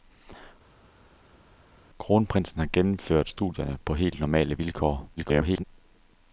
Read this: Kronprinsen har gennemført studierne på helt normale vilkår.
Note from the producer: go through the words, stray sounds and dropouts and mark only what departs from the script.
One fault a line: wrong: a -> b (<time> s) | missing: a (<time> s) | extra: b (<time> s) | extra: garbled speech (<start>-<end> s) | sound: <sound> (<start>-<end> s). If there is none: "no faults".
extra: garbled speech (5.2-5.6 s)